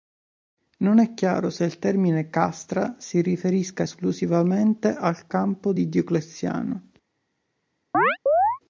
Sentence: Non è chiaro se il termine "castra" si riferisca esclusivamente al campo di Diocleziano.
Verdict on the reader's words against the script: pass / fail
pass